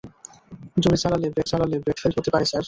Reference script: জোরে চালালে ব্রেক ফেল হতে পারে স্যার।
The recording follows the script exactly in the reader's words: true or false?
false